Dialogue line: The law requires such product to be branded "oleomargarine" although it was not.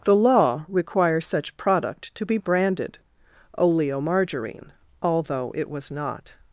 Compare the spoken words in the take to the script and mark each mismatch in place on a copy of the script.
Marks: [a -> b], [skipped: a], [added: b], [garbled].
The law requires such product to be branded "oleomargarine" although it was not.